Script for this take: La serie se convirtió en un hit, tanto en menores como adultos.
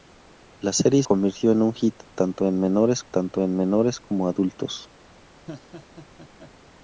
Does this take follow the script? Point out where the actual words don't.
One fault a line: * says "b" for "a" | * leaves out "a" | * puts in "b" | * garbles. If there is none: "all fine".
* leaves out "se"
* puts in "tanto en menores"